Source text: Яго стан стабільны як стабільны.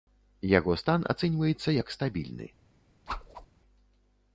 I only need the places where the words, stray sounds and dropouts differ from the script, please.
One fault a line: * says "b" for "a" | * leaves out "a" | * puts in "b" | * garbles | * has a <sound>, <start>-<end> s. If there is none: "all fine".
* says "ацэньваецца" for "стабільны"
* has a whoosh, 3.1-3.5 s